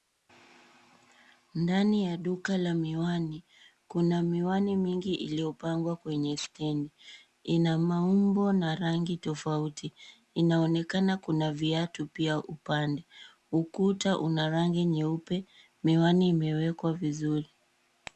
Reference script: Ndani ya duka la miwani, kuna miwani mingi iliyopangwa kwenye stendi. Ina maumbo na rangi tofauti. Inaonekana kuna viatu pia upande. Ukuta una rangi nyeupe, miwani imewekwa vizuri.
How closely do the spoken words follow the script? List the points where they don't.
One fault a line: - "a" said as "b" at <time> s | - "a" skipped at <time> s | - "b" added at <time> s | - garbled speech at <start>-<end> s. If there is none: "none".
none